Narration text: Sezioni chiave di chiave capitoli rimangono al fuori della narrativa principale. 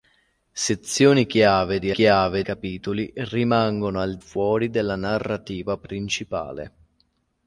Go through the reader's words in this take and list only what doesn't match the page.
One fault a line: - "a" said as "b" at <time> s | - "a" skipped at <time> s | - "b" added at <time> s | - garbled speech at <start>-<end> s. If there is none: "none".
none